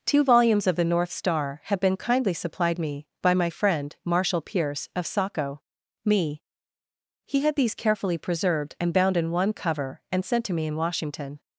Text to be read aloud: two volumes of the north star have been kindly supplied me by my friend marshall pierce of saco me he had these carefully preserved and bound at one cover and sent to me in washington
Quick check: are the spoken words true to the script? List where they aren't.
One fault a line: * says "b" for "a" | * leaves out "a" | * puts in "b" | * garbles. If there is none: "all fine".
* says "in" for "at"